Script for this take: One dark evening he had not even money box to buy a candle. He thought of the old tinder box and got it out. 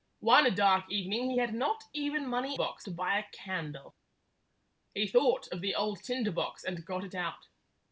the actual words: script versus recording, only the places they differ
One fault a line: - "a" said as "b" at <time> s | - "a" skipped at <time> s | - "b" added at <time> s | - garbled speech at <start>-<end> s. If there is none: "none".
none